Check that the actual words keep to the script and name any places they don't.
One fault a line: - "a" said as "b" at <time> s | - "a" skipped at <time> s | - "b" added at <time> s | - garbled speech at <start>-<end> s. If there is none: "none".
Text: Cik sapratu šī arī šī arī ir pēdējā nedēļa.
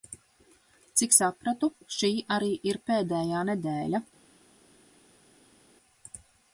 - "šī arī" skipped at 2.5 s